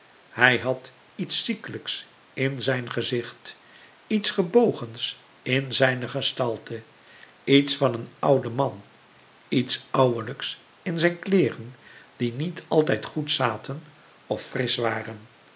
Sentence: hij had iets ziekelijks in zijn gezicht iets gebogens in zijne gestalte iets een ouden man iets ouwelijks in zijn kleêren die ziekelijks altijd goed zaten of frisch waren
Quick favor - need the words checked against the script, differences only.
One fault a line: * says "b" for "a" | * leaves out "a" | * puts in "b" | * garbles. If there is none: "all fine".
* puts in "van"
* says "niet" for "ziekelijks"